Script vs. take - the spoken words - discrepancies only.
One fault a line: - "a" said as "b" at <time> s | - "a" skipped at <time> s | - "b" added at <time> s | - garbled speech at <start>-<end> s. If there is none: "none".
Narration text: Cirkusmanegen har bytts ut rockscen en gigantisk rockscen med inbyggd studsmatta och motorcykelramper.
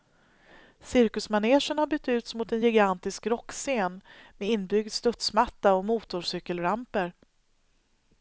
- "rockscen" said as "mot" at 2.3 s